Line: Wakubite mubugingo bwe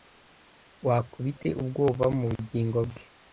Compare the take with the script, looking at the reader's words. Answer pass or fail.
fail